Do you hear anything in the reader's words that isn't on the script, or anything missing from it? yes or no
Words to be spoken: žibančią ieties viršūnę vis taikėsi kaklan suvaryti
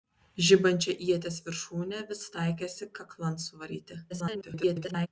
yes